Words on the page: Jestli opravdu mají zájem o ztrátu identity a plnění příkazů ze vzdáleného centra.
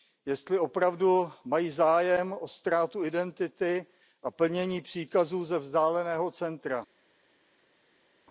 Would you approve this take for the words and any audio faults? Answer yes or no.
yes